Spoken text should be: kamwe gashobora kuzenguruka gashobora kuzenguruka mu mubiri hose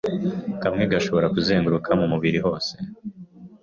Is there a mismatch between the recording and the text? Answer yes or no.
yes